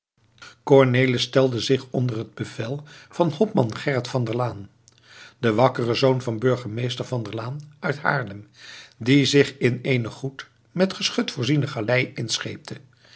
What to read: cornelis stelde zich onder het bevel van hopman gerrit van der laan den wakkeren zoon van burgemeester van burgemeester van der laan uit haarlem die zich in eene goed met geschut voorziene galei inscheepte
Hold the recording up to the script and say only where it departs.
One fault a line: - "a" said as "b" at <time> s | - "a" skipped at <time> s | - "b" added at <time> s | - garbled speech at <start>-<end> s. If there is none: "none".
- "burgemeester van" skipped at 7.2 s